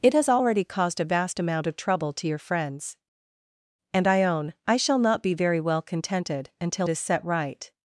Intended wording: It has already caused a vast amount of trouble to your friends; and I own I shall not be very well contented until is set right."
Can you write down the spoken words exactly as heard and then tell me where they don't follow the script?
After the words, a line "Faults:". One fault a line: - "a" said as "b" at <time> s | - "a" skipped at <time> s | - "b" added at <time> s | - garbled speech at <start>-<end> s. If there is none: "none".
It has already caused a vast amount of trouble to your friends; and I own I shall not be very well contented until is set right."
Faults:
none